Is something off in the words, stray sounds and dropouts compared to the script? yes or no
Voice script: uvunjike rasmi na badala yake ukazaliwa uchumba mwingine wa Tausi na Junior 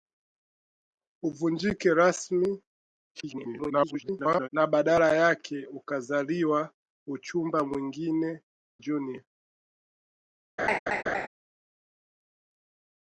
yes